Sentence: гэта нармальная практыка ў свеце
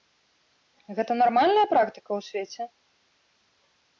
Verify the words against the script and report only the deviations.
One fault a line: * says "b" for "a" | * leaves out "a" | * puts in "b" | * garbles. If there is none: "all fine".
all fine